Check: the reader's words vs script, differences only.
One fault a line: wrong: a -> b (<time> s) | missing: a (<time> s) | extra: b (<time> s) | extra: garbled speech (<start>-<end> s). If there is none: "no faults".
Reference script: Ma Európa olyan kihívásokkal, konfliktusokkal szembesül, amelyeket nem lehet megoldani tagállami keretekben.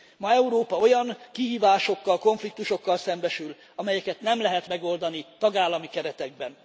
no faults